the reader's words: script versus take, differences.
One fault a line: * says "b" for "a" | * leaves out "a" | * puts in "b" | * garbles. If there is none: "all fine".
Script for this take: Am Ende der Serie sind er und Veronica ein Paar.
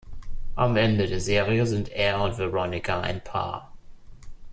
all fine